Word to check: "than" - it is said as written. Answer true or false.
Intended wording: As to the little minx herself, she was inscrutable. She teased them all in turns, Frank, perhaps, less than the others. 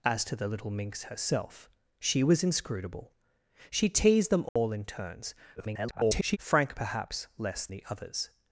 false